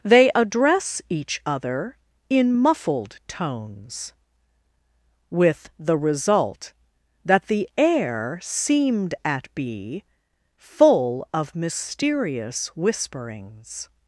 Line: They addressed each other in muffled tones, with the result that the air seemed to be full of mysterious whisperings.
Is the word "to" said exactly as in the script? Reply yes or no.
no